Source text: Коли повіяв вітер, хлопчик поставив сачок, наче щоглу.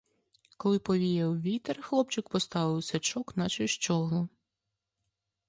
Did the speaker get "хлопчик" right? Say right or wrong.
right